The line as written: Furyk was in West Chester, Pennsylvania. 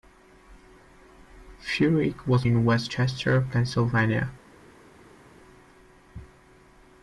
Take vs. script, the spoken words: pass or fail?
pass